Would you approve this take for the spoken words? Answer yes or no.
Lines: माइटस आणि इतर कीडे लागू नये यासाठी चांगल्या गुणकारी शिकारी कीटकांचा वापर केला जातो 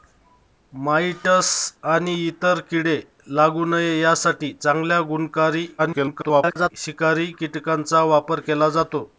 no